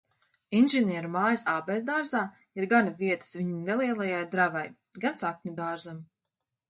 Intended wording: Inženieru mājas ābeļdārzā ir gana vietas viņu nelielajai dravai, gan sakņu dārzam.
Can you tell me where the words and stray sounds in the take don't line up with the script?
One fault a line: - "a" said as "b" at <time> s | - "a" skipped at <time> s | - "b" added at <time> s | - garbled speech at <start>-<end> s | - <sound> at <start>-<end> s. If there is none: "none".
none